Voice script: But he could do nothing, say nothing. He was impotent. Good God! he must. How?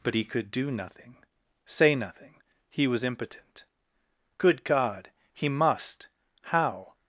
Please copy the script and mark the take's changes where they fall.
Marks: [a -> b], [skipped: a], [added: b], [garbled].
But he could do nothing, say nothing. He was impotent. Good God! he must. How?